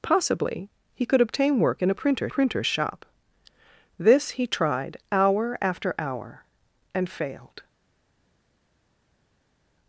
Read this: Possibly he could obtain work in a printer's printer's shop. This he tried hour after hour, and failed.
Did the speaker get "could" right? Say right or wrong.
right